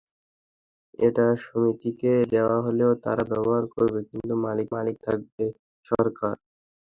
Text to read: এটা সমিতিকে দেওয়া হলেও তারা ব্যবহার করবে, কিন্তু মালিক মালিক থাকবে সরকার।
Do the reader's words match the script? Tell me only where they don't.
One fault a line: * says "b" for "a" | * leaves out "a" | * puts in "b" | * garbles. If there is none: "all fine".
all fine